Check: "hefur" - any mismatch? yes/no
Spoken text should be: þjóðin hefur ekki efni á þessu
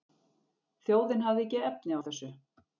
yes